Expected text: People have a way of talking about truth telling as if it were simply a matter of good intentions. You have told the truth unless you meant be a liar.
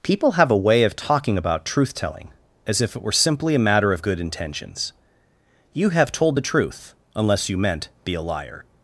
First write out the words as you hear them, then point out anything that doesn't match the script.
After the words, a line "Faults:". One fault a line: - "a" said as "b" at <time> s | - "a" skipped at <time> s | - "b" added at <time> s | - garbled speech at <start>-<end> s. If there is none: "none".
People have a way of talking about truth telling as if it were simply a matter of good intentions. You have told the truth unless you meant be a liar.
Faults:
none